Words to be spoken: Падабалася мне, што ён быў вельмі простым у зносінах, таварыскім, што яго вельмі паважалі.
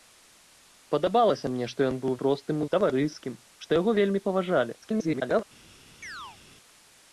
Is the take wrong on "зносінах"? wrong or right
wrong